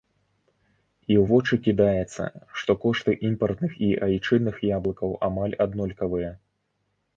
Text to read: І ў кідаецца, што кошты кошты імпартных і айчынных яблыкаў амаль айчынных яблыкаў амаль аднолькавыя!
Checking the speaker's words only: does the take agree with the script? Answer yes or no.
no